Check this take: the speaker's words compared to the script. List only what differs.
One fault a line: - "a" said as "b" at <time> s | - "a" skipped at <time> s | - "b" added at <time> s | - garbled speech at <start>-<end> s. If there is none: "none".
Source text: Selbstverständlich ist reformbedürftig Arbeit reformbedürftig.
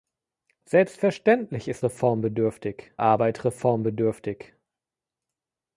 none